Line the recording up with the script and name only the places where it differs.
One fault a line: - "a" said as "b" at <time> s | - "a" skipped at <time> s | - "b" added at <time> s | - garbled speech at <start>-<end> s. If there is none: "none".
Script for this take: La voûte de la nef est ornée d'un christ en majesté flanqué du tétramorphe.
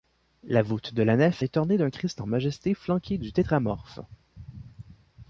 none